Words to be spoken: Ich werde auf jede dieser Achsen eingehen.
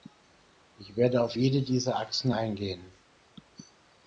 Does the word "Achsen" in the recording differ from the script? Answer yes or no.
no